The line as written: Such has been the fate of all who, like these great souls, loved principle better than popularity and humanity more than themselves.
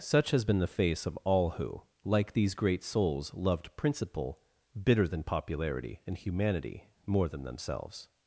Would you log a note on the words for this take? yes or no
yes